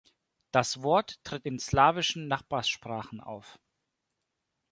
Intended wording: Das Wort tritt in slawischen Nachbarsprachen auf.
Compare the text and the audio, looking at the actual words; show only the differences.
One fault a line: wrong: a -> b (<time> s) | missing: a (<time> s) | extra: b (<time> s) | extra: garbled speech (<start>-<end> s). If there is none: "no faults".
no faults